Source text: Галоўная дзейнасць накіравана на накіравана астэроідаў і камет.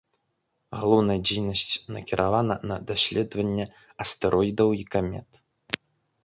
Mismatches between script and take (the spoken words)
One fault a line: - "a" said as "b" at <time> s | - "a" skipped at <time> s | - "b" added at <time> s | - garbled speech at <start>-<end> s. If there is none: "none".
- "накіравана" said as "даследаванне" at 2.9 s